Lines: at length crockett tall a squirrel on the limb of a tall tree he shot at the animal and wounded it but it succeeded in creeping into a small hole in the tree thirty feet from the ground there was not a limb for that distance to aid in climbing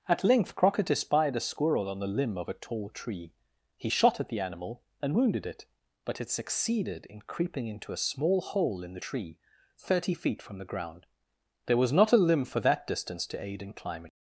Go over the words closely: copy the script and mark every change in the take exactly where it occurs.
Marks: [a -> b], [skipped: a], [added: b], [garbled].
at length crockett [tall -> espied] a squirrel on the limb of a tall tree he shot at the animal and wounded it but it succeeded in creeping into a small hole in the tree thirty feet from the ground there was not a limb for that distance to aid in climbing